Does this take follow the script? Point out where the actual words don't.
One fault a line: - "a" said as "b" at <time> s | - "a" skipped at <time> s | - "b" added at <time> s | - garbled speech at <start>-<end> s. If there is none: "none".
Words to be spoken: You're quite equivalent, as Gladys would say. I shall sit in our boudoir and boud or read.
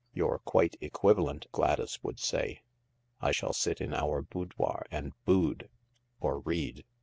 - "as" skipped at 1.4 s